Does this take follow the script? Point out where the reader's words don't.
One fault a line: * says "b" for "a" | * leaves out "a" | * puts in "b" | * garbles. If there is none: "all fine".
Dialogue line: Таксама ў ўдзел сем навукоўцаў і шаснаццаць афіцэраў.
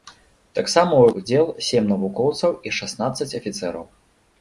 all fine